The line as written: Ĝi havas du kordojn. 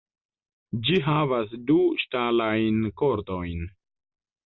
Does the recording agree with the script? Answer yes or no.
no